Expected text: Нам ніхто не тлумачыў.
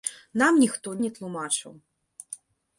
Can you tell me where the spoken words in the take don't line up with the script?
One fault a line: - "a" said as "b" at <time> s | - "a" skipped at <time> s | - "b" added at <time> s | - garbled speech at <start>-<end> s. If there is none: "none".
none